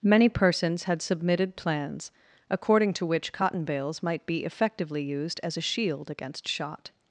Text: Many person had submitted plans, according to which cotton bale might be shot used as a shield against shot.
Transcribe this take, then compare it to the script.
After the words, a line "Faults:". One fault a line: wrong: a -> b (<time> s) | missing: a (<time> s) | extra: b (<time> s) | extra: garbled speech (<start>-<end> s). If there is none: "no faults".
Many persons had submitted plans, according to which cotton bales might be effectively used as a shield against shot.
Faults:
wrong: person -> persons (0.3 s)
wrong: bale -> bales (3.6 s)
wrong: shot -> effectively (4.4 s)